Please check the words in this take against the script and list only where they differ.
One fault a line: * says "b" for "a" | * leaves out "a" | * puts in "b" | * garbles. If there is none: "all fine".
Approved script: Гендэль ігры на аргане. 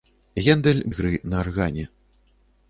all fine